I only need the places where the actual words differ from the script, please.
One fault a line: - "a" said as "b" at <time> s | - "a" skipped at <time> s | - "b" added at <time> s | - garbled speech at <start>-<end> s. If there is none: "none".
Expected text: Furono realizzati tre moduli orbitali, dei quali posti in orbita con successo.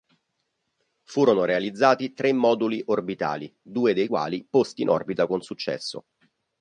- "due" added at 3.6 s